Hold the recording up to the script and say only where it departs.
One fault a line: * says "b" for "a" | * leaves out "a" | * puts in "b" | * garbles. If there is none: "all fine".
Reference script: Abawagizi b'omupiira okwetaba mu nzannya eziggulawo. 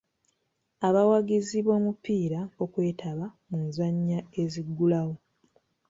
all fine